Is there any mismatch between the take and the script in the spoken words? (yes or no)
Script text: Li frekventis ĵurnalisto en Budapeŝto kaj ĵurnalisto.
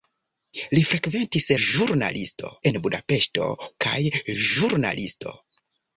no